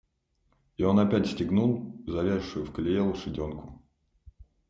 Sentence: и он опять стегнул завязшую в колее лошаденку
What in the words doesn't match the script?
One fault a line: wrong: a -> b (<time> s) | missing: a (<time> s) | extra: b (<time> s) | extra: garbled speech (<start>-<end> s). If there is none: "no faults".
no faults